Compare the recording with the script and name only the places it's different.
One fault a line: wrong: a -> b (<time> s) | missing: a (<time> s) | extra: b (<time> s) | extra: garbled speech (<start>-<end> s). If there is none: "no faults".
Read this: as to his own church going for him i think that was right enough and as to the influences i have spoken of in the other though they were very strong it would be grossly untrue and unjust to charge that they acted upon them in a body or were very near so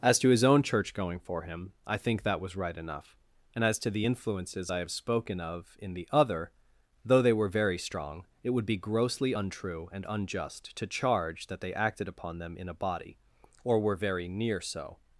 no faults